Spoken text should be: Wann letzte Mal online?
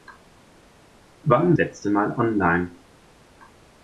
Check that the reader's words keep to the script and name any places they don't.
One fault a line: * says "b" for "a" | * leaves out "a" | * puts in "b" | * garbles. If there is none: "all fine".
all fine